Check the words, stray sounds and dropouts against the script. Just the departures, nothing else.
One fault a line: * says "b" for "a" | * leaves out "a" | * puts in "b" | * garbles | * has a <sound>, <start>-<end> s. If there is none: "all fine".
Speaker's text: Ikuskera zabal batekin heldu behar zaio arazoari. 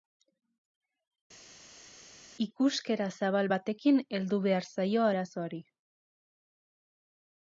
all fine